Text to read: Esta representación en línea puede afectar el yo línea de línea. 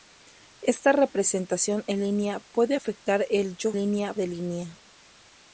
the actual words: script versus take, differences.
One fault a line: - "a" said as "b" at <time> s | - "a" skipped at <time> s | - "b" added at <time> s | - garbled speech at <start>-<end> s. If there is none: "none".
none